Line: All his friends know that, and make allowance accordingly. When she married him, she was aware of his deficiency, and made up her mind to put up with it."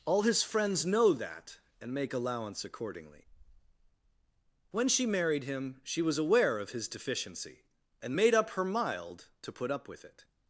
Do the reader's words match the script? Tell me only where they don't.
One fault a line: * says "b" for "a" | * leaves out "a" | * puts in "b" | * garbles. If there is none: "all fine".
* says "mild" for "mind"